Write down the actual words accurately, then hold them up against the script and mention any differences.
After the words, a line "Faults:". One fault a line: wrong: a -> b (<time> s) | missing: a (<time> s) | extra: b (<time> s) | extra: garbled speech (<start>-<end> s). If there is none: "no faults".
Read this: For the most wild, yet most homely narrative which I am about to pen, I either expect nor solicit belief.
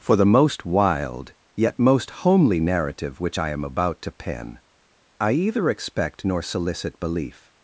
For the most wild, yet most homely narrative which I am about to pen, I either expect nor solicit belief.
Faults:
no faults